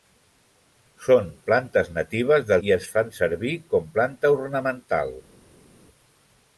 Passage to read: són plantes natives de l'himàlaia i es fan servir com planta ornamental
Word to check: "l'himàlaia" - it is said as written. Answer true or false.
false